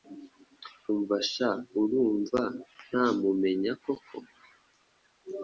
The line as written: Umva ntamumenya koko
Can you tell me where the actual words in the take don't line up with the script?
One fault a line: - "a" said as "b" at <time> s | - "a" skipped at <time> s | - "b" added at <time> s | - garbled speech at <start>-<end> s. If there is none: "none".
- "sha urumva" added at 1.3 s